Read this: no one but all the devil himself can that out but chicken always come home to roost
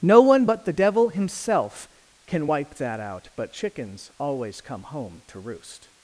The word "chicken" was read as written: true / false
false